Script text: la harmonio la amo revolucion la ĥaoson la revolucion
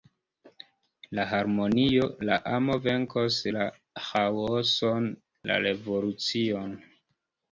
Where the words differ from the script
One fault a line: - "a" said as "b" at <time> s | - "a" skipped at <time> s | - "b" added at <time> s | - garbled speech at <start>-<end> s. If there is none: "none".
- "revolucion" said as "venkos" at 2.9 s